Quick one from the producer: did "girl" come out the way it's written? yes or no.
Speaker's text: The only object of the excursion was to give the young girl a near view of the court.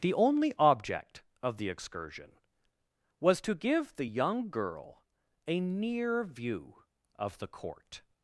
yes